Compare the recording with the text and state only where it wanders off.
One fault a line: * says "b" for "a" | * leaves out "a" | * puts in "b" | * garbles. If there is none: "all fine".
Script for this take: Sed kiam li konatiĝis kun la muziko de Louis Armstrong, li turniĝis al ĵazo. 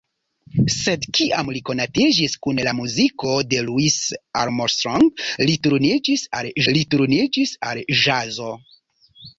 * puts in "li turniĝis al"